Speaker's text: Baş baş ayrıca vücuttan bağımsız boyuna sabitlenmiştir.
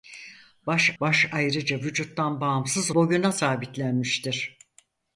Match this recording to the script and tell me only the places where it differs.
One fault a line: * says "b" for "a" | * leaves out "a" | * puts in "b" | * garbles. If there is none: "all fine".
all fine